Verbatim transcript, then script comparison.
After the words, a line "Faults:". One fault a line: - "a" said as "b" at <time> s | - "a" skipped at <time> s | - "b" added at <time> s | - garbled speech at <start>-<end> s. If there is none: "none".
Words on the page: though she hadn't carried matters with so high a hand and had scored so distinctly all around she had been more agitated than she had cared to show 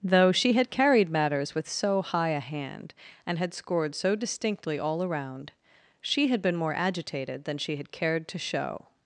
though she had carried matters with so high a hand and had scored so distinctly all around she had been more agitated than she had cared to show
Faults:
- "hadn't" said as "had" at 0.5 s